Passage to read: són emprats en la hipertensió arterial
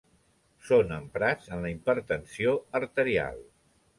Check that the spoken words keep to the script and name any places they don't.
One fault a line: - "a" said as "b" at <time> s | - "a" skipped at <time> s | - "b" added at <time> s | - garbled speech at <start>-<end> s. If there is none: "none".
none